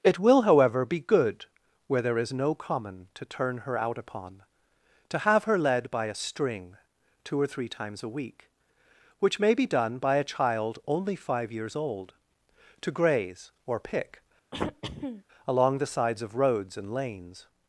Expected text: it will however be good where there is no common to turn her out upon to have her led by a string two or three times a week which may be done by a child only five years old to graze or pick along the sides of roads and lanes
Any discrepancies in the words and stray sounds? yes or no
yes